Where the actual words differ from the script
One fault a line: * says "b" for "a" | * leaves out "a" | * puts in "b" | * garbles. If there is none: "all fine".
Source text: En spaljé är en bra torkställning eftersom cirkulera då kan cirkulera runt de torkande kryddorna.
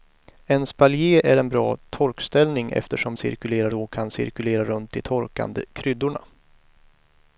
all fine